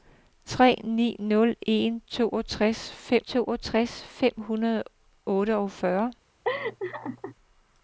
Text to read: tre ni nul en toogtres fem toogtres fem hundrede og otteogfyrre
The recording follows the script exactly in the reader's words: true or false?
true